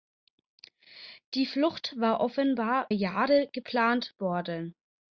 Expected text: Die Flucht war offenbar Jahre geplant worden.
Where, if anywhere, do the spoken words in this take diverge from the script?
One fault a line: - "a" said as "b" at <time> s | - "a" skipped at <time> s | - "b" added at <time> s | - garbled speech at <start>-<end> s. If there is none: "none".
none